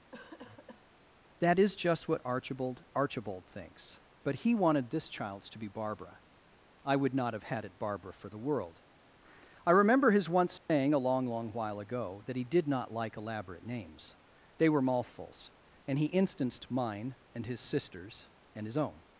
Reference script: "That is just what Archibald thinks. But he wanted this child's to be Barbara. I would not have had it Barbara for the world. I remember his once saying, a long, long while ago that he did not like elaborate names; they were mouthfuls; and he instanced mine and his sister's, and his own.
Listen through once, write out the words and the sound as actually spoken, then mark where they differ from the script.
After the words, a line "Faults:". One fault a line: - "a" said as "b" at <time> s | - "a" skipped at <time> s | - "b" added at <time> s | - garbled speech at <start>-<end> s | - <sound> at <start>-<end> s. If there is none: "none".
"That is just what Archibald Archibald thinks. But he wanted this child's to be Barbara. I would not have had it Barbara for the world. I remember his once saying, a long, long while ago that he did not like elaborate names; they were mouthfuls; and he instanced mine and his sister's, and his own.
Faults:
- cough at 0.1-0.9 s
- "Archibald" added at 2.9 s
- dropout at 10.6-10.7 s